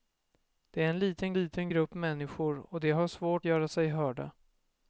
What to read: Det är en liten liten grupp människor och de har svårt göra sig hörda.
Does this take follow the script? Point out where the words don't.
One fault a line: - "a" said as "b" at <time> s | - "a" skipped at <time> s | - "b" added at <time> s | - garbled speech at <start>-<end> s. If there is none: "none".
none